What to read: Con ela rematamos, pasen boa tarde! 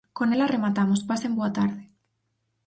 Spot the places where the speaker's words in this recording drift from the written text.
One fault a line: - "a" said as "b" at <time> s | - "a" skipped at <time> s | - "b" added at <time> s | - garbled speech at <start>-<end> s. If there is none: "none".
none